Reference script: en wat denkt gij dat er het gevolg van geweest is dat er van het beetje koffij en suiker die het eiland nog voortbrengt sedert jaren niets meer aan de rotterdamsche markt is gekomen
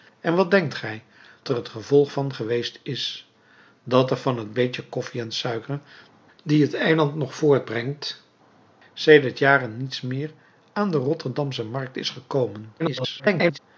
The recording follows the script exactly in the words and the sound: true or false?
false